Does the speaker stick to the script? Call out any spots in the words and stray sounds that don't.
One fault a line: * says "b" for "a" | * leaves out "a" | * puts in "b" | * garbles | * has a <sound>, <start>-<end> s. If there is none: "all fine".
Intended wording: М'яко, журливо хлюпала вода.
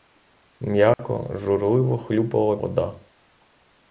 * has a dropout, 0.9-1.0 s